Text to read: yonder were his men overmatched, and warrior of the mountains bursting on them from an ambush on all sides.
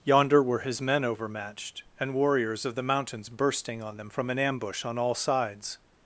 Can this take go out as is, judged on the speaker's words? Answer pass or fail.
fail